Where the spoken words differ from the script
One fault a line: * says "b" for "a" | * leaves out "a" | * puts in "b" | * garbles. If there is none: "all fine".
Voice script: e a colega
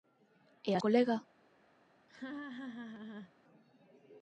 all fine